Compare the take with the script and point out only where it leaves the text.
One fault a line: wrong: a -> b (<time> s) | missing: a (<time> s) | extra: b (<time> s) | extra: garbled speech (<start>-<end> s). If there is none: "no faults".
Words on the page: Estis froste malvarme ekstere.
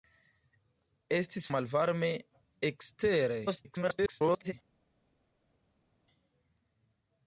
missing: froste (1.5 s)
extra: garbled speech (3.5-4.5 s)